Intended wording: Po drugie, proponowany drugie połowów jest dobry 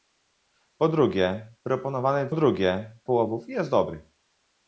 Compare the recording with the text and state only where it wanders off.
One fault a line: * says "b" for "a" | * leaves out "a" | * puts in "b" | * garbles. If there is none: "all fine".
all fine